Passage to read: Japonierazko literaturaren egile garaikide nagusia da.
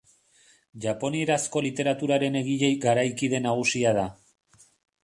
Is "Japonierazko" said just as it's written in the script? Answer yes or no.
yes